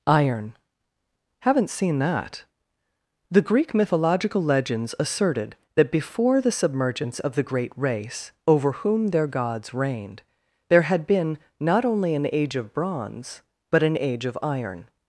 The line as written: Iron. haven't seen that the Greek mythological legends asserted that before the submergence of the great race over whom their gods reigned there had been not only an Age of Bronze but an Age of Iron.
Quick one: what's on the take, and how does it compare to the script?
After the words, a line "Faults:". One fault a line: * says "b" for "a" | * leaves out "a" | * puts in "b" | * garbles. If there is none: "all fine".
Iron. haven't seen that the Greek mythological legends asserted that before the submergence of the great race over whom their gods reigned there had been not only an Age of Bronze but an Age of Iron.
Faults:
all fine